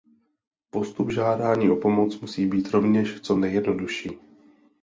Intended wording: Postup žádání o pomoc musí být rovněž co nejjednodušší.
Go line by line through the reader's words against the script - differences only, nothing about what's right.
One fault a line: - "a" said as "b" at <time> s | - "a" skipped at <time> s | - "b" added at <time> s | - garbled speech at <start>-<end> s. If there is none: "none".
none